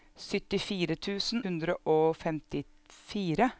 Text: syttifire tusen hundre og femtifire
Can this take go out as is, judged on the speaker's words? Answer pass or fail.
pass